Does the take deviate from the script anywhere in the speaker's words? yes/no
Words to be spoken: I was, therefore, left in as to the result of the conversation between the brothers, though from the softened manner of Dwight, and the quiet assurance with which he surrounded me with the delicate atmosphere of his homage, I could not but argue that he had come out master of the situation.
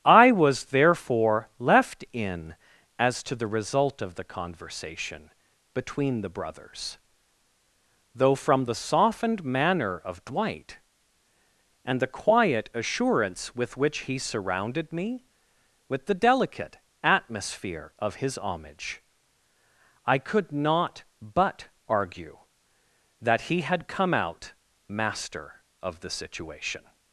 no